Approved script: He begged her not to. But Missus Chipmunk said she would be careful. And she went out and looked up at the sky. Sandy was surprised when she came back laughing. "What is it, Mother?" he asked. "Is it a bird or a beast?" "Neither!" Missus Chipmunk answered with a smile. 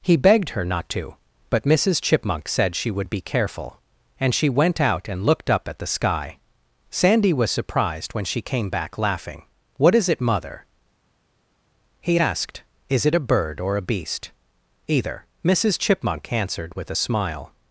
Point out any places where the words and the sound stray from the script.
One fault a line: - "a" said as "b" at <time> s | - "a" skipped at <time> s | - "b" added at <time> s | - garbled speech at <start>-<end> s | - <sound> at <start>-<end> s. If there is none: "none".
- "Neither" said as "Either" at 14.9 s